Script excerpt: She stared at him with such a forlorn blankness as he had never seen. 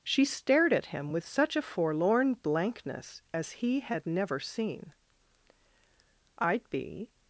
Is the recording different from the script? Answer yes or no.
yes